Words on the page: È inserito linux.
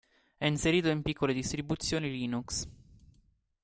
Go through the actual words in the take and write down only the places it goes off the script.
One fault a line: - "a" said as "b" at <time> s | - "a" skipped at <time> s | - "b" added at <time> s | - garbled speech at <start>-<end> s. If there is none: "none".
- "in piccole distribuzioni" added at 0.9 s